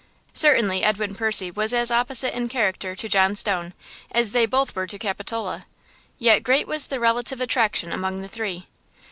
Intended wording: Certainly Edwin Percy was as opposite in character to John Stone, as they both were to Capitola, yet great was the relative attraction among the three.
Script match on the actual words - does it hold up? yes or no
yes